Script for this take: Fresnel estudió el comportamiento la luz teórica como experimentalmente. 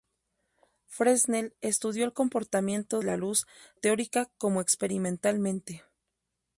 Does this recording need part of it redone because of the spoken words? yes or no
no